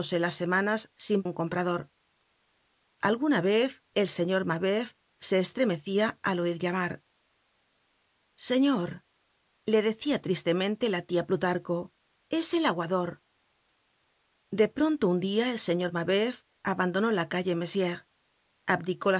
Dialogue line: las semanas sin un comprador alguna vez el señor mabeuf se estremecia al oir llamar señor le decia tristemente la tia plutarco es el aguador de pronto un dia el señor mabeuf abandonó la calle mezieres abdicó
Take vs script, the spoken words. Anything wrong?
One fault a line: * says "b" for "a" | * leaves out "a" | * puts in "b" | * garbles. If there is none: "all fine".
all fine